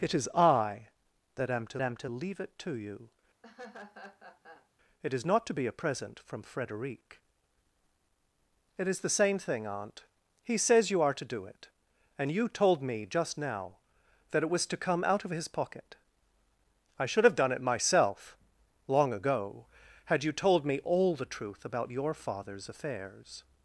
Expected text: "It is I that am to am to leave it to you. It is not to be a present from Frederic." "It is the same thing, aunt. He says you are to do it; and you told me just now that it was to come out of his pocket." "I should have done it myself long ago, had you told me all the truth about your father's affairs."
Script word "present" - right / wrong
right